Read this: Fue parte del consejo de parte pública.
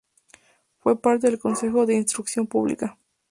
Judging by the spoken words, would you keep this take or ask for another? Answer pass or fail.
fail